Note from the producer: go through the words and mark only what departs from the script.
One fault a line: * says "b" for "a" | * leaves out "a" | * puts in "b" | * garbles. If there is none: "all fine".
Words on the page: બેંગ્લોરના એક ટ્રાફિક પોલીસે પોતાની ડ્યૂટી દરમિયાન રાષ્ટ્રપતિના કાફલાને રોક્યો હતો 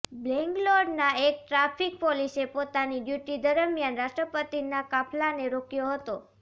all fine